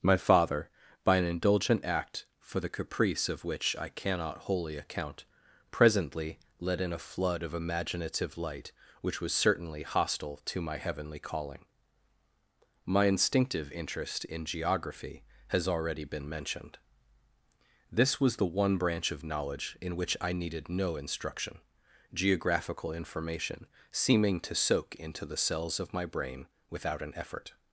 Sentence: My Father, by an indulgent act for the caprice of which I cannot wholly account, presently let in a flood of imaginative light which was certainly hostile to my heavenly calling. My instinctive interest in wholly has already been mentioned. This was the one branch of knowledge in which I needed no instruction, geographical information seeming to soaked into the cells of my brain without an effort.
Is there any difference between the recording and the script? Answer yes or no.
yes